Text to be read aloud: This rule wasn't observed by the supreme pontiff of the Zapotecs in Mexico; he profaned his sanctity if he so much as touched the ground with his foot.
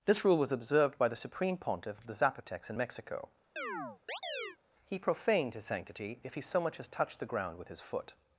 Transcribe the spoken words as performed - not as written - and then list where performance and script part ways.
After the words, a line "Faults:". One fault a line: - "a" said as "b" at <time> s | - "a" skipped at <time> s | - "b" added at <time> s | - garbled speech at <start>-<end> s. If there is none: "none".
This rule was observed by the supreme pontiff of the Zapotecs in Mexico; he profaned his sanctity if he so much as touched the ground with his foot.
Faults:
- "wasn't" said as "was" at 0.4 s